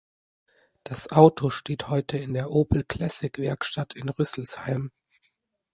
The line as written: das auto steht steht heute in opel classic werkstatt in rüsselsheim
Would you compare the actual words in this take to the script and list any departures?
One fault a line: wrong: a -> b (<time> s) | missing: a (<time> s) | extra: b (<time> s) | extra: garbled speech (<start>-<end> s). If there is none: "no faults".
missing: steht (1.9 s)
extra: der (2.3 s)